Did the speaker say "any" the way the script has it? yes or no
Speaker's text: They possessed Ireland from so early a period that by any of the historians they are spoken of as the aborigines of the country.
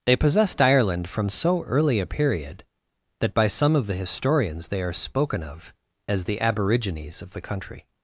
no